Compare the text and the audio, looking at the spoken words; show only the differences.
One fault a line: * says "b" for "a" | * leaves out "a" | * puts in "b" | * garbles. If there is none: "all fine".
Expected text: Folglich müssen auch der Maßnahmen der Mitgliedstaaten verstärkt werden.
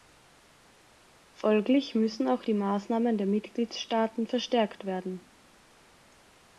* says "die" for "der"